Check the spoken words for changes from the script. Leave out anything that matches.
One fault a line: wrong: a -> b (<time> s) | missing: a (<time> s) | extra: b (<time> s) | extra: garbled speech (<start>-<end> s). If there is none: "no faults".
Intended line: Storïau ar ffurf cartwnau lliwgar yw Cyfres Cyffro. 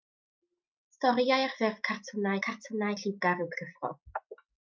extra: cartwnau (2.5 s)
missing: Cyfres (3.5 s)